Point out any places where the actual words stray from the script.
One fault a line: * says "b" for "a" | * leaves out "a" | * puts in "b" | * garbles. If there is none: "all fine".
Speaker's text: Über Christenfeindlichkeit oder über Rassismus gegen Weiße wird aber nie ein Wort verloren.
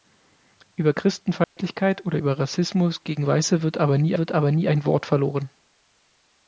* puts in "wird aber nie"